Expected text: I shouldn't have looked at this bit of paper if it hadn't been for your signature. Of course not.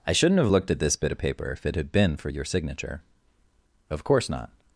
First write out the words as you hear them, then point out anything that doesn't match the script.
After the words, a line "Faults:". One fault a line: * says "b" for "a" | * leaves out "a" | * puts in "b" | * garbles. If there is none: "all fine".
I shouldn't have looked at this bit of paper if it had been for your signature. Of course not.
Faults:
* says "had" for "hadn't"